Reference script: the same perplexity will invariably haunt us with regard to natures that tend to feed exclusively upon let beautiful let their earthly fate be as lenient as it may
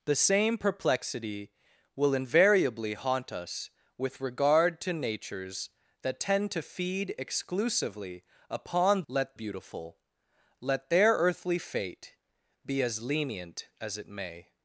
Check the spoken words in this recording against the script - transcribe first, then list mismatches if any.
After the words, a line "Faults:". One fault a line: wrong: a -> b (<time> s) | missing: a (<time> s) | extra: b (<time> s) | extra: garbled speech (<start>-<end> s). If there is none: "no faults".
the same perplexity will invariably haunt us with regard to natures that tend to feed exclusively upon let beautiful let their earthly fate be as lenient as it may
Faults:
no faults